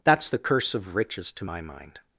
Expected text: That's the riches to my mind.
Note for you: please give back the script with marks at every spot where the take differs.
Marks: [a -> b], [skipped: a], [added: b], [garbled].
That's the [added: curse of] riches to my mind.